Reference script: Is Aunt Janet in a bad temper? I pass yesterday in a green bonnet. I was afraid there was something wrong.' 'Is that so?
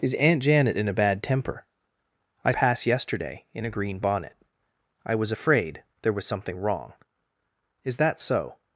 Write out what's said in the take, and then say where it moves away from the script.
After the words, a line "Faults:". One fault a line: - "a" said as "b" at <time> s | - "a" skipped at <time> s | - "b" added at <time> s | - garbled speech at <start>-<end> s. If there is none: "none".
Is Aunt Janet in a bad temper? I pass yesterday in a green bonnet. I was afraid there was something wrong.' 'Is that so?
Faults:
none